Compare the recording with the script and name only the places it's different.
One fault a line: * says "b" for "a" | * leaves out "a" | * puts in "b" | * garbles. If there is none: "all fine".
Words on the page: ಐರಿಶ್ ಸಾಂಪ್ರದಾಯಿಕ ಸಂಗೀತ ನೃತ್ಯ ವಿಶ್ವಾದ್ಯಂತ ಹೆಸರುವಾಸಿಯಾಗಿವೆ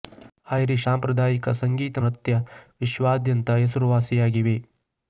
all fine